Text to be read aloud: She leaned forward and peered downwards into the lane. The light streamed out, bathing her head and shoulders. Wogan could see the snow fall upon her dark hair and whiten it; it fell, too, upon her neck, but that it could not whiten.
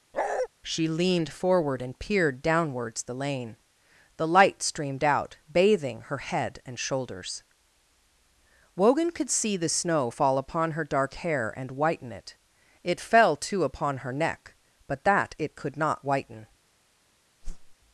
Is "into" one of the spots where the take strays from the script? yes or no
yes